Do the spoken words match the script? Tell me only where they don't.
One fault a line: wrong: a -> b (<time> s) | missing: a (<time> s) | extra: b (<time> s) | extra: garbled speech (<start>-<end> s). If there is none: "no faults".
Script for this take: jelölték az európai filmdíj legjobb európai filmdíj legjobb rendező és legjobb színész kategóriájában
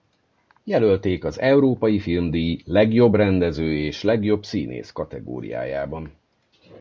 missing: európai filmdíj legjobb (3.2 s)